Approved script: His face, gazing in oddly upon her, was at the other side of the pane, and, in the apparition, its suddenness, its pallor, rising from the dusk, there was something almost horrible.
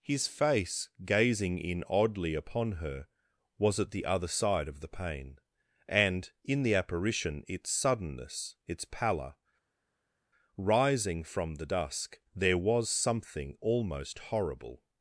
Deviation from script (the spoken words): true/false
false